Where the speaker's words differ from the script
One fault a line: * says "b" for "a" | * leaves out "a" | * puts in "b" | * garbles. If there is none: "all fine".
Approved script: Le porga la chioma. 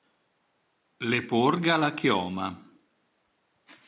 all fine